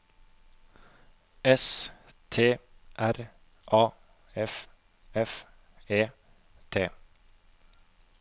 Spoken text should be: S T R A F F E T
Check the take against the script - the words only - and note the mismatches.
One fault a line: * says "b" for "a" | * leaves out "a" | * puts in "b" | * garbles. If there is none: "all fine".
all fine